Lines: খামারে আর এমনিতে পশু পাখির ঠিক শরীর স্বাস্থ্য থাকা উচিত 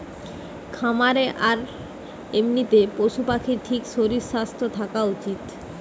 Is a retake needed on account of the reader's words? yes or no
no